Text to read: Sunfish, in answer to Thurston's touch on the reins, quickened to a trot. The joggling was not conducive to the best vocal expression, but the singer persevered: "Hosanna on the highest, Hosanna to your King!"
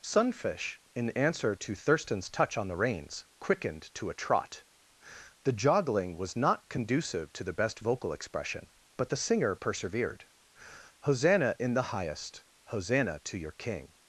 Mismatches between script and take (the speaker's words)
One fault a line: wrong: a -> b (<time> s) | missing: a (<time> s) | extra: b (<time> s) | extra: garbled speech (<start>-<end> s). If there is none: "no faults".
wrong: on -> in (11.6 s)